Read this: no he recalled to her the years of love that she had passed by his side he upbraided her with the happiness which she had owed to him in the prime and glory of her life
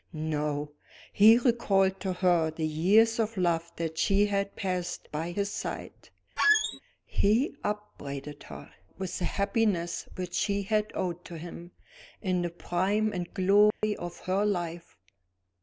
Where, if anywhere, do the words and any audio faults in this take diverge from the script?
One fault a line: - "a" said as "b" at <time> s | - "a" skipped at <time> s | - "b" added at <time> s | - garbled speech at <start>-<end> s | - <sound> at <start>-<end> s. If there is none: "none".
- squeak at 6.4-6.8 s
- dropout at 13.7-13.8 s